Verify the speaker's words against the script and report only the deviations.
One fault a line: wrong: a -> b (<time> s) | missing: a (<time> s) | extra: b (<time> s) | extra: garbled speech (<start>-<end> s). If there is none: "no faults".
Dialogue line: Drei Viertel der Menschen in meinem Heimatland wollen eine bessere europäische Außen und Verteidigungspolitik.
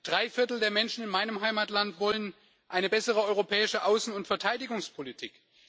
no faults